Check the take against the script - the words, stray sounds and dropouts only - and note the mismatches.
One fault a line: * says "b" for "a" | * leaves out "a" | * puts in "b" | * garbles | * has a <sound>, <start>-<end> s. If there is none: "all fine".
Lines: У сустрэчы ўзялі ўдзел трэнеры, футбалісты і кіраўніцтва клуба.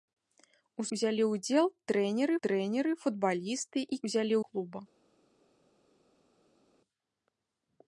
* leaves out "сустрэчы"
* puts in "трэнеры"
* says "ўзялі" for "кіраўніцтва"